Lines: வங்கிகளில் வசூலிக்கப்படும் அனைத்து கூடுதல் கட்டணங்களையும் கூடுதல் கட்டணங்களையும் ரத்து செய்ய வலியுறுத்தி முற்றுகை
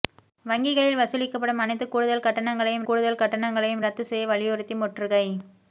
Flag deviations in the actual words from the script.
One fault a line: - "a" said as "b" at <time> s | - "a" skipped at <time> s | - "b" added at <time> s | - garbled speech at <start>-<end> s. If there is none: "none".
none